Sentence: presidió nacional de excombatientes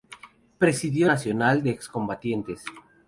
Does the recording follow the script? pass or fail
pass